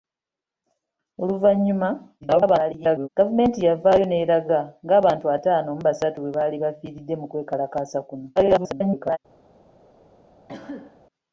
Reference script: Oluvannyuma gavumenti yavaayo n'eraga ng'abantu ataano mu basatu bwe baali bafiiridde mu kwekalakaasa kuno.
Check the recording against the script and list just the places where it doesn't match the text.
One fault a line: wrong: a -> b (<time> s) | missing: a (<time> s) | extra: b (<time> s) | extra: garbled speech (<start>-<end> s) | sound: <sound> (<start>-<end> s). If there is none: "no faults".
extra: garbled speech (2.2-3.1 s)
extra: garbled speech (8.4-9.2 s)
sound: cough (10.5-11.0 s)